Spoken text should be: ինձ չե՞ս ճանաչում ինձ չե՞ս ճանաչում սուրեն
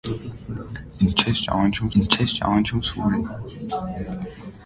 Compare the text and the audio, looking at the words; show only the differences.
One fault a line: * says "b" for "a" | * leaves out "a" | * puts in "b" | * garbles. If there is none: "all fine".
all fine